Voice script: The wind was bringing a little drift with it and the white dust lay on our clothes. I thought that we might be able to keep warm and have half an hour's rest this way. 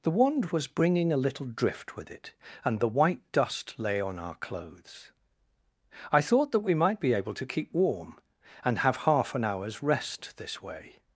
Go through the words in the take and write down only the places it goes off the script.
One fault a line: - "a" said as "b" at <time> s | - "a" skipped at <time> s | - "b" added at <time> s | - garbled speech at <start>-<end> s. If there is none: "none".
- "wind" said as "wand" at 0.1 s